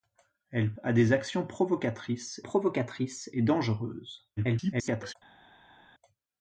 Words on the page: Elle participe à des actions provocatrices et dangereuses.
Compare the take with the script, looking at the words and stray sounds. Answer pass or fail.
fail